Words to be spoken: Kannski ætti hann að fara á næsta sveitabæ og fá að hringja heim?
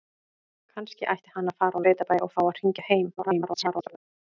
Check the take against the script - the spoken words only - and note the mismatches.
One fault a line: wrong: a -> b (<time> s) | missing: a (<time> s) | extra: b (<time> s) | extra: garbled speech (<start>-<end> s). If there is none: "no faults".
missing: næsta (1.9 s)
extra: garbled speech (3.2-4.0 s)